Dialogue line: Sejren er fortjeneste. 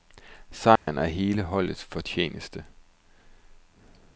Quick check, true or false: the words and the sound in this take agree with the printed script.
false